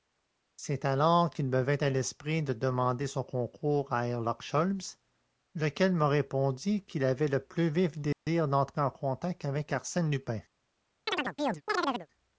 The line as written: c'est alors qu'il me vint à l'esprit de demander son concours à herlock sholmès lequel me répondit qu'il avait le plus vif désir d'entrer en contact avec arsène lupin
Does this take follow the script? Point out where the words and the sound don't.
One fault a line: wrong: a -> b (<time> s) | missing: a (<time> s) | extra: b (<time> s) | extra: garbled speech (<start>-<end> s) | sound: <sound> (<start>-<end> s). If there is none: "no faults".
sound: dropout (8.1-8.3 s)
sound: chirp (11.1-12.1 s)